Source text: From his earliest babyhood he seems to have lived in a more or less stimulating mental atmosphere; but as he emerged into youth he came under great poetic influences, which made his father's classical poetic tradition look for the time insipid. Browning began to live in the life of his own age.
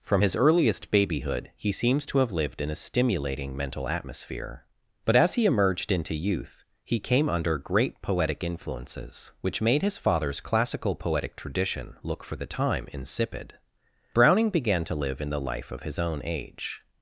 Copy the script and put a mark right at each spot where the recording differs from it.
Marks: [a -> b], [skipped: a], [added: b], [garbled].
From his earliest babyhood he seems to have lived in a [skipped: more or less] stimulating mental atmosphere; but as he emerged into youth he came under great poetic influences, which made his father's classical poetic tradition look for the time insipid. Browning began to live in the life of his own age.